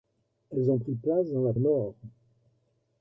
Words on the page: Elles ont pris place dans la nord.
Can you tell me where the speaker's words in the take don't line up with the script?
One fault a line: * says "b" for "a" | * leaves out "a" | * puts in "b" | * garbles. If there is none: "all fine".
all fine